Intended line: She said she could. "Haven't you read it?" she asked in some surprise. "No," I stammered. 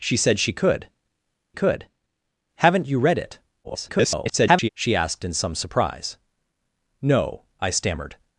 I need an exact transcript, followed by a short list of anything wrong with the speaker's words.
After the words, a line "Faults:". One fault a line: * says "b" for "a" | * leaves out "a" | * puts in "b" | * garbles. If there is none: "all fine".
She said she could could. "Haven't you read it?" [garbled] she asked in some surprise. "No," I stammered.
Faults:
* puts in "could"
* garbles